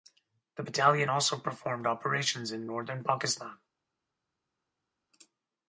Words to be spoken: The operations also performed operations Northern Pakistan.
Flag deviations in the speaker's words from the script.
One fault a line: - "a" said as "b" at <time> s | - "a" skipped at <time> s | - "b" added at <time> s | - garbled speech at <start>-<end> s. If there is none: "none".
- "operations" said as "battalion" at 0.6 s
- "in" added at 2.5 s